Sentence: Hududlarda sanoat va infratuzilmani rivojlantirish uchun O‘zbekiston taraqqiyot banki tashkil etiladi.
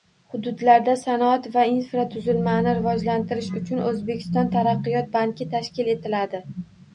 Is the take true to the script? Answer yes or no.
yes